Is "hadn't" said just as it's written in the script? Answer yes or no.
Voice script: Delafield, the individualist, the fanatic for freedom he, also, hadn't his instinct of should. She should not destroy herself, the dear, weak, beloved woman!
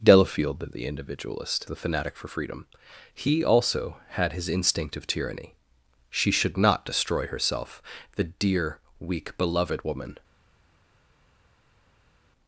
no